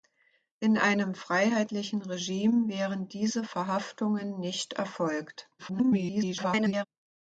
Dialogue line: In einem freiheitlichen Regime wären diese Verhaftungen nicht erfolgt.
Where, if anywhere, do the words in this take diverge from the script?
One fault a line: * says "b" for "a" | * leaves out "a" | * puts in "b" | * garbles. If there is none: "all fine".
* garbles